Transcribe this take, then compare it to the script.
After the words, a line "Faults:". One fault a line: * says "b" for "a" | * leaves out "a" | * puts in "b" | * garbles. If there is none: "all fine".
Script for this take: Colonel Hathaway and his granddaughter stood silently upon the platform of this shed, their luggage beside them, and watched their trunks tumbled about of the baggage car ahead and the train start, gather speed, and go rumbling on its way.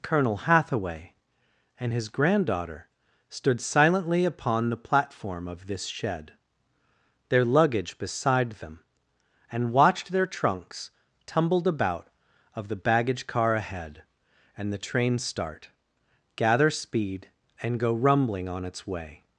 Colonel Hathaway and his granddaughter stood silently upon the platform of this shed, their luggage beside them, and watched their trunks tumbled about of the baggage car ahead and the train start, gather speed, and go rumbling on its way.
Faults:
all fine